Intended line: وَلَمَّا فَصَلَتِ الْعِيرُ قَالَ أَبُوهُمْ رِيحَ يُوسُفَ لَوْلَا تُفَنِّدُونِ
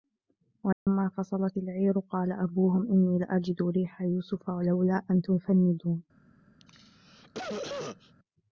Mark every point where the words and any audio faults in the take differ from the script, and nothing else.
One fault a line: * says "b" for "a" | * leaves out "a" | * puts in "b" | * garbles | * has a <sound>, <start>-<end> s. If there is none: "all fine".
* has a dropout, 0.7-0.9 s
* puts in "إِنِّي لَأَجِدُ"
* puts in "أَنْ"
* has a cough, 6.6-8.1 s